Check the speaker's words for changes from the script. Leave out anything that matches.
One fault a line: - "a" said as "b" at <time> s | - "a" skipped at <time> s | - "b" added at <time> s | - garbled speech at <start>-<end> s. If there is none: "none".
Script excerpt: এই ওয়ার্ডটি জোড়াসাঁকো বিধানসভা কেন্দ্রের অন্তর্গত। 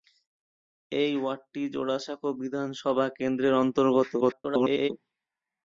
- garbled speech at 4.2-4.9 s